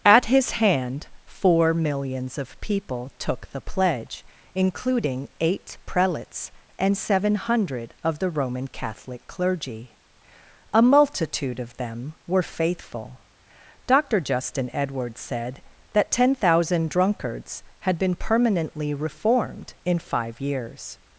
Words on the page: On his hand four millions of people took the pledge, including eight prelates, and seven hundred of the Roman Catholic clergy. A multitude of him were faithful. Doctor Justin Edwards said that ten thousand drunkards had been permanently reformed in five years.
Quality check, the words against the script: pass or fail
fail